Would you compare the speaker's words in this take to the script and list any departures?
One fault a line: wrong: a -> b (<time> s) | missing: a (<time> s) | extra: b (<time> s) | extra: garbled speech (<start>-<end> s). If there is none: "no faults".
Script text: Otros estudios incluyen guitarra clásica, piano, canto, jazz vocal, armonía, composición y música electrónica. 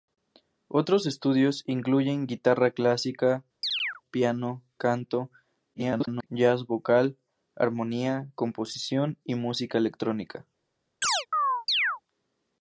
extra: garbled speech (5.7-6.3 s)